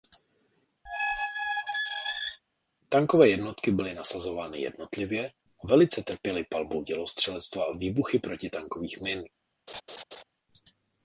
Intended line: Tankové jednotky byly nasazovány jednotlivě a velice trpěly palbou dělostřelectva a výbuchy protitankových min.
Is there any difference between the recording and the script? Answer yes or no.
no